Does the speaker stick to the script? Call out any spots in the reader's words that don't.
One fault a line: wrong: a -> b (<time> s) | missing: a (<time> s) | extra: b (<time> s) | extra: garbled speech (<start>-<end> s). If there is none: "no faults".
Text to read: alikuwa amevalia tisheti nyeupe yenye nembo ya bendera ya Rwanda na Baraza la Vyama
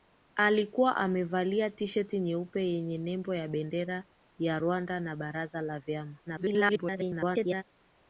extra: garbled speech (6.3-7.6 s)